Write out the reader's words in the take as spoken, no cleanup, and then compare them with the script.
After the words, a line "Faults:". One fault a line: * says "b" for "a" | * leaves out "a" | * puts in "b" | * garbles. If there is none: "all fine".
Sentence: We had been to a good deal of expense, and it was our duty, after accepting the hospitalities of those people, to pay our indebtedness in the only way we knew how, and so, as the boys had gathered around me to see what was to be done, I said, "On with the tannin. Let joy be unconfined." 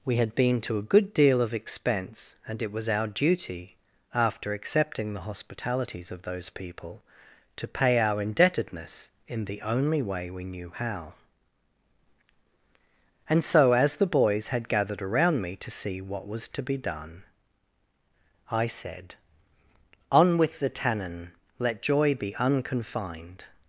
We had been to a good deal of expense, and it was our duty, after accepting the hospitalities of those people, to pay our indebtedness in the only way we knew how, and so, as the boys had gathered around me to see what was to be done, I said, "On with the tannin. Let joy be unconfined."
Faults:
all fine